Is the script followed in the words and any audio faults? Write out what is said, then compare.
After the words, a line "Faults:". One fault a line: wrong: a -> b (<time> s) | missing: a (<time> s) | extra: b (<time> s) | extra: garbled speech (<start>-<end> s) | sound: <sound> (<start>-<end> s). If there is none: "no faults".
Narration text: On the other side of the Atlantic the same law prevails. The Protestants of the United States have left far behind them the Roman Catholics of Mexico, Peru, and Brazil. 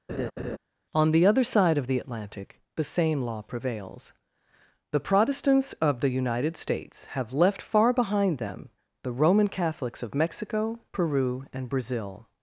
On the other side of the Atlantic the same law prevails. The Protestants of the United States have left far behind them the Roman Catholics of Mexico, Peru, and Brazil.
Faults:
sound: laugh (0.1-0.6 s)